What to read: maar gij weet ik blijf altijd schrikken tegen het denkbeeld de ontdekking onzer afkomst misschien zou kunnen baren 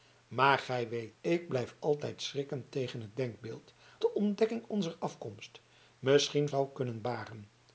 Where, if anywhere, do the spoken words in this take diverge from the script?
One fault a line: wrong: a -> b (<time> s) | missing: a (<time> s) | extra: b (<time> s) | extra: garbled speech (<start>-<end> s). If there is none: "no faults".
no faults